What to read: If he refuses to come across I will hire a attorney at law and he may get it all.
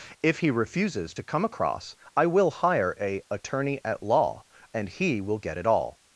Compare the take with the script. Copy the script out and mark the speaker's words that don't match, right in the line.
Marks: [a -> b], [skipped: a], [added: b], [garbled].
If he refuses to come across I will hire a attorney at law and he [may -> will] get it all.